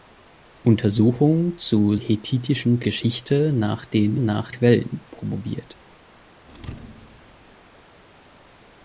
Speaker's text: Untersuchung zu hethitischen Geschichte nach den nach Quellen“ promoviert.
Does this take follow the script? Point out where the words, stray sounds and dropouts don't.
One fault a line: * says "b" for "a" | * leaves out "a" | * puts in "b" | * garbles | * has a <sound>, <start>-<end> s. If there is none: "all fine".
* has a thud, 6.4-7.5 s